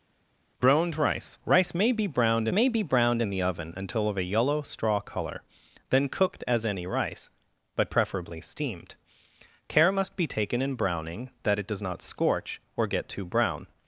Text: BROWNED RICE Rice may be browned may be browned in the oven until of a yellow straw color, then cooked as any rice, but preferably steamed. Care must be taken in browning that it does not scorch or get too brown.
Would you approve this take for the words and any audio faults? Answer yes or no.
yes